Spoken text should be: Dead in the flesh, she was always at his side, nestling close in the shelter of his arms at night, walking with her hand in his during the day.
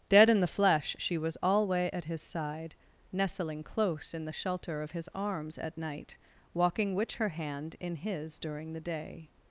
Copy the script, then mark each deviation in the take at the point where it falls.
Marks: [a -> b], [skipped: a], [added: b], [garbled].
Dead in the flesh, she was [always -> alway] at his side, nestling close in the shelter of his arms at night, walking [with -> which] her hand in his during the day.